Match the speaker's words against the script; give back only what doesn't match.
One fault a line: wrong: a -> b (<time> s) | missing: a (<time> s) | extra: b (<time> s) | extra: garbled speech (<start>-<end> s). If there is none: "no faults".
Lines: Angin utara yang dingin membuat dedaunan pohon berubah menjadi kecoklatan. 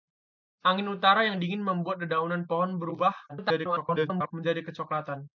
extra: garbled speech (3.3-4.3 s)